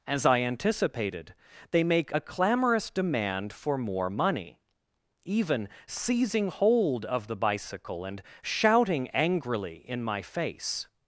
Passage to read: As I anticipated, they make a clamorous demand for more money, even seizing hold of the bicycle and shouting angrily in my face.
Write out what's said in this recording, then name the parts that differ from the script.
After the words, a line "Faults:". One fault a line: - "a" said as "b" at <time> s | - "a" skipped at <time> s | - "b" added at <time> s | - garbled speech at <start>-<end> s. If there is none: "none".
As I anticipated, they make a clamorous demand for more money, even seizing hold of the bicycle and shouting angrily in my face.
Faults:
none